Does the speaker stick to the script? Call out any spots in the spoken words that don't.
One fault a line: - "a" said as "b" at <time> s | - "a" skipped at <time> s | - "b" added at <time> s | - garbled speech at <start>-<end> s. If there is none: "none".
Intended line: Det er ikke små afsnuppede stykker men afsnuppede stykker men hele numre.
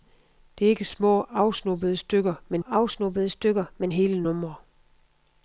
none